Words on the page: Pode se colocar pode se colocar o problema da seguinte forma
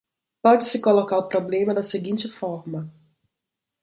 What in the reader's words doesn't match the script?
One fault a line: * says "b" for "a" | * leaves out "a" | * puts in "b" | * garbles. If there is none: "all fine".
* leaves out "pode se colocar"